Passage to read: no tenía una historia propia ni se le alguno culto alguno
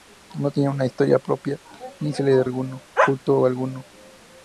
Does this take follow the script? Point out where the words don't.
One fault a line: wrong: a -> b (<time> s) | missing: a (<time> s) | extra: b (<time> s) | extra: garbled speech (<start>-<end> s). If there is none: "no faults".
no faults